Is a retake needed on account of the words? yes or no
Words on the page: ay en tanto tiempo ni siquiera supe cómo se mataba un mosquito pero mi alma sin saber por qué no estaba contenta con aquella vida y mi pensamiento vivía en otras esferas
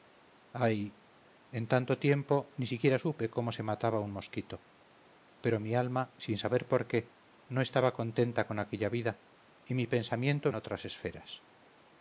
yes